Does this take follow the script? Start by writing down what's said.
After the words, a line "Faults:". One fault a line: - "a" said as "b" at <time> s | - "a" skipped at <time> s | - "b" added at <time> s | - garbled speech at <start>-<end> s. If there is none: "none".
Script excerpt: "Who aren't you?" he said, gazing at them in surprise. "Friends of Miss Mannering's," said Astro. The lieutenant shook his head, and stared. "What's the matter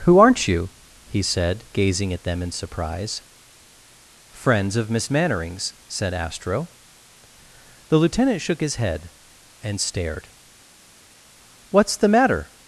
"Who aren't you?" he said, gazing at them in surprise. "Friends of Miss Mannering's," said Astro. The lieutenant shook his head, and stared. "What's the matter
Faults:
none